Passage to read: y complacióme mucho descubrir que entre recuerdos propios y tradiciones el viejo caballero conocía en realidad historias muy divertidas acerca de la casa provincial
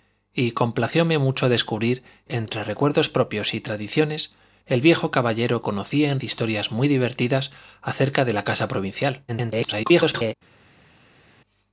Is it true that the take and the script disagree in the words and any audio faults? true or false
true